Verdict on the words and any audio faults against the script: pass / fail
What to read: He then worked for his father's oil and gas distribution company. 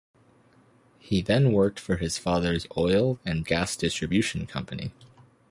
pass